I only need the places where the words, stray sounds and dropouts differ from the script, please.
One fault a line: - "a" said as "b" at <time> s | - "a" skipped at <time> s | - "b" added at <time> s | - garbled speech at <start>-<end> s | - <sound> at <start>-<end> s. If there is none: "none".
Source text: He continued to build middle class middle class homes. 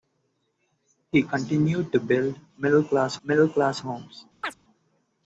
- chirp at 4.4-4.6 s